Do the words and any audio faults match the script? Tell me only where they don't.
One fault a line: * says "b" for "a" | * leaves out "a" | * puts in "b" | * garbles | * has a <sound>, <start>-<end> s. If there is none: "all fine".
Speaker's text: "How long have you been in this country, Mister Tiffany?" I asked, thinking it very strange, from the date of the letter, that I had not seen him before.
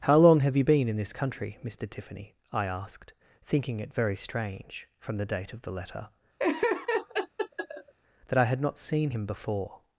* has a laugh, 6.4-7.9 s